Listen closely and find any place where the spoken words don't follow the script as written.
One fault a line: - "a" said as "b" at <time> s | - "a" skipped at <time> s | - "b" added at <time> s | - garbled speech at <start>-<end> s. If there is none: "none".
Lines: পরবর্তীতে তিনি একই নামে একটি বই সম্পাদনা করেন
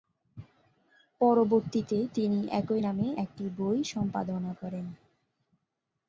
none